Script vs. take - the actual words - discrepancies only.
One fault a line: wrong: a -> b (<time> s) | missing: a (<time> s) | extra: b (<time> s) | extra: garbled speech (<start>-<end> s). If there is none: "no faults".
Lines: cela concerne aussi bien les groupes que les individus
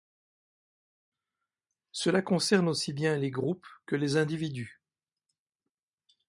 no faults